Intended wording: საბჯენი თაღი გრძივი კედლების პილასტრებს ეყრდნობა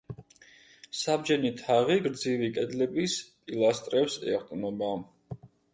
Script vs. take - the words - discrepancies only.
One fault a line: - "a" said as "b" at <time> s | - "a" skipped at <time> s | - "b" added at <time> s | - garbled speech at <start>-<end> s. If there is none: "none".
none